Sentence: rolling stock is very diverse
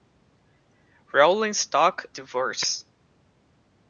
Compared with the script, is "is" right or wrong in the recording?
wrong